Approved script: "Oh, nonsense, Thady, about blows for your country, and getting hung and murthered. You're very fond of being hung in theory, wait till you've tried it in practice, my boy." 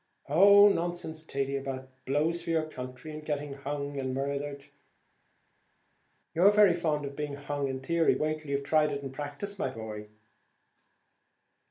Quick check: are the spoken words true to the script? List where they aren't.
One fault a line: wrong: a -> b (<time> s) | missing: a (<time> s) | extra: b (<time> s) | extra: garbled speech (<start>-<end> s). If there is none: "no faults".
no faults